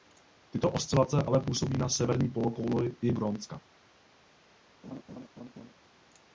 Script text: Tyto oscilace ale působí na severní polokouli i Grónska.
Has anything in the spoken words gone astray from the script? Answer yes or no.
no